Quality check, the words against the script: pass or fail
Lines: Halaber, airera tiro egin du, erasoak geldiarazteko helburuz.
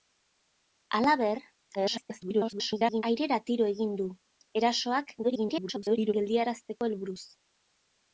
fail